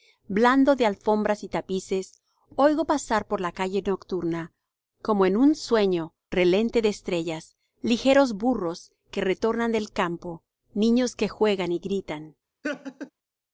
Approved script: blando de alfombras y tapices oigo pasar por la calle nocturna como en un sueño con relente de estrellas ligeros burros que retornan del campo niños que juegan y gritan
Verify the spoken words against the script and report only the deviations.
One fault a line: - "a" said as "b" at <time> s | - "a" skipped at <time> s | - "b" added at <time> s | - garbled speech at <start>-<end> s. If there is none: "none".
- "con" skipped at 6.2 s